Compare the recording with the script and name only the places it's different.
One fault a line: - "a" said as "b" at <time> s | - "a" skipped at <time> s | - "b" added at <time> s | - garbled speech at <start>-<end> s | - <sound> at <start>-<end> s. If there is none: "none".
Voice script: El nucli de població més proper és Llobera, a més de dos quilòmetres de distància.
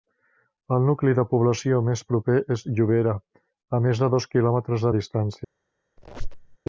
- squeak at 6.0-6.6 s